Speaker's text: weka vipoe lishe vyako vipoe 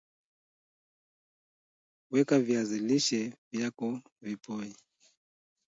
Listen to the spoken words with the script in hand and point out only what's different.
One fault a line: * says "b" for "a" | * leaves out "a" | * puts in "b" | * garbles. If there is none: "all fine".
* says "viazi" for "vipoe"